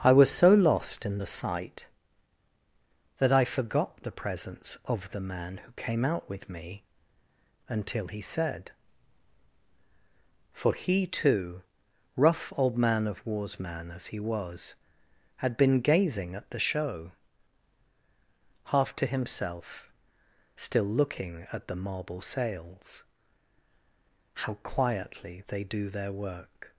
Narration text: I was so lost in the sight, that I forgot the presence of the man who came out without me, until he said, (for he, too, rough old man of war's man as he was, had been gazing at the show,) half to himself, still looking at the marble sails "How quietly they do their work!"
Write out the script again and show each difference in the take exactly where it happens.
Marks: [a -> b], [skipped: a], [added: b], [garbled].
I was so lost in the sight, that I forgot the presence of the man who came out [without -> with] me, until he said, (for he, too, rough old man of war's man as he was, had been gazing at the show,) half to himself, still looking at the marble sails "How quietly they do their work!"